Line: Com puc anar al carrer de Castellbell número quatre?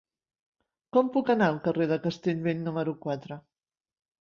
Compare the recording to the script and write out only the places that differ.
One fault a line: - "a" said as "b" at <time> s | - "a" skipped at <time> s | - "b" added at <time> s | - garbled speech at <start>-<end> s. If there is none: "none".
none